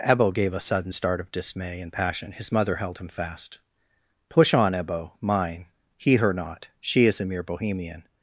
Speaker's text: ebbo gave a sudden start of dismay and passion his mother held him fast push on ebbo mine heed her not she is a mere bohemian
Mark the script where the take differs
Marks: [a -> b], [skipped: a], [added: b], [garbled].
ebbo gave a sudden start of dismay and passion his mother held him fast push on ebbo mine [heed -> he] her not she is a mere bohemian